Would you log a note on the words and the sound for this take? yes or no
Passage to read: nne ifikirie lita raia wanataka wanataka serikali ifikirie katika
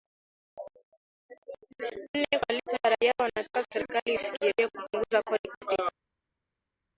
yes